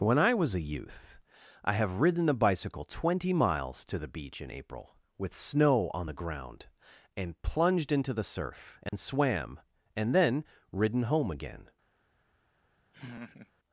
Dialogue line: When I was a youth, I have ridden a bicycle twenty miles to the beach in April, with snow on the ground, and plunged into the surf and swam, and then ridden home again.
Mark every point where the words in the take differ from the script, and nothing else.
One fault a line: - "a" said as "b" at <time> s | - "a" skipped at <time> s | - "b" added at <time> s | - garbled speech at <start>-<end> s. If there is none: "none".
none